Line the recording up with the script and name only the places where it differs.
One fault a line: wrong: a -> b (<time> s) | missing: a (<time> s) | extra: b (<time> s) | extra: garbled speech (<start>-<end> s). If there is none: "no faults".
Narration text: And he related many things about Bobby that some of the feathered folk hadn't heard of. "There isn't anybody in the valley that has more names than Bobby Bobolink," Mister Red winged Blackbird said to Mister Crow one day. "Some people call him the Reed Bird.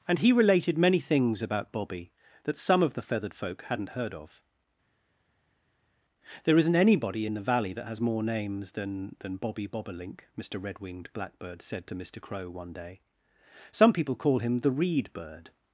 extra: than (9.2 s)